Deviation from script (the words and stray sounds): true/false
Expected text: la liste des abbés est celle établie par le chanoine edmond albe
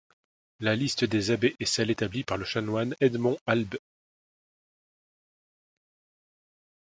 false